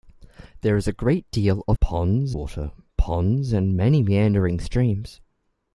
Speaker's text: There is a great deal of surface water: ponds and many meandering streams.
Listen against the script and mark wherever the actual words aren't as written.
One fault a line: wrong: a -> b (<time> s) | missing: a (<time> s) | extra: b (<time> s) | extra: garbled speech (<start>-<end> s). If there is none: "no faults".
wrong: surface -> ponds (1.8 s)